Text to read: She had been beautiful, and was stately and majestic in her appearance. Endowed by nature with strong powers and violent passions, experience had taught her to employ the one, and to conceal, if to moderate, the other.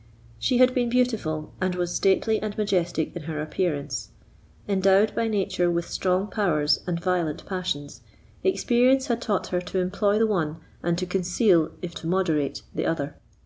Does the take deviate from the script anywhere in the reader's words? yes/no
no